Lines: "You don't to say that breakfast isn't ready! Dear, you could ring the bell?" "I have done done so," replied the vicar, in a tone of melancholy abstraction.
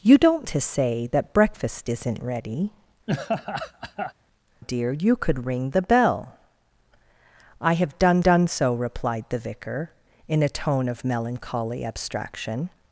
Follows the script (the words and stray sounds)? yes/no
no